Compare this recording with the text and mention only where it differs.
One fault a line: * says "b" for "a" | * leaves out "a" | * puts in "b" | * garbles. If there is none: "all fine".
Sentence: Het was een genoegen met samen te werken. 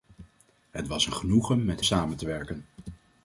all fine